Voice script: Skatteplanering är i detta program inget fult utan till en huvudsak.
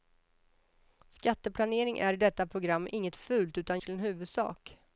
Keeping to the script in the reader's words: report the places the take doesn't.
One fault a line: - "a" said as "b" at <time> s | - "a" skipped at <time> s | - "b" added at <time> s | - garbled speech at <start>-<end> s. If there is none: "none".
none